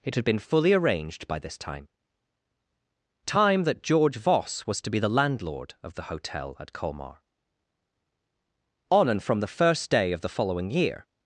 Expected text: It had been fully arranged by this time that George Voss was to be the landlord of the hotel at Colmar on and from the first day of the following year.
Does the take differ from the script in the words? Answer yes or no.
yes